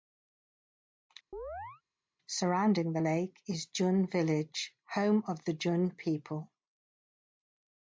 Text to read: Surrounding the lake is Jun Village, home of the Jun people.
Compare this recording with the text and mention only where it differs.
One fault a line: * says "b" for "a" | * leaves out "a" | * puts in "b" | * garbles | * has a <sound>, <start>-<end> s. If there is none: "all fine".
* has a chirp, 1.3-1.8 s